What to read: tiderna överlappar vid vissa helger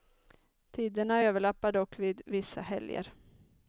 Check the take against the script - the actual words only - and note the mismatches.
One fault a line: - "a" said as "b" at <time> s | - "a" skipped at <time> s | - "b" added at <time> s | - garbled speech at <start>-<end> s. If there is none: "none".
- "dock" added at 1.7 s